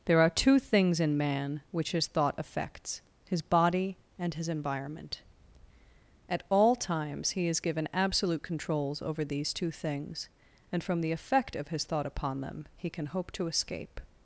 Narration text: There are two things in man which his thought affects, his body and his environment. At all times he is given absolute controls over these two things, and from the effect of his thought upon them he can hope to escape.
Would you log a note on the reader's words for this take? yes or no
no